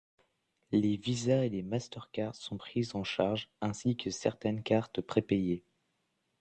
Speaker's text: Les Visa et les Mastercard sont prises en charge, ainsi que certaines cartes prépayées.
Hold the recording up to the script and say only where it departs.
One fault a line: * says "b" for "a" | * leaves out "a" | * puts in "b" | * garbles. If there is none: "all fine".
all fine